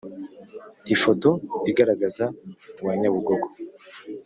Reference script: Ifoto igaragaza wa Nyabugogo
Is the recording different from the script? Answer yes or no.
no